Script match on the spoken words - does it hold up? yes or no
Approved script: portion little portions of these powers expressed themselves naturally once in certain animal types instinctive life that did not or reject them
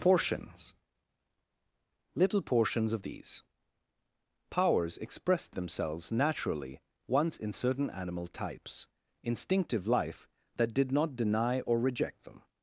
no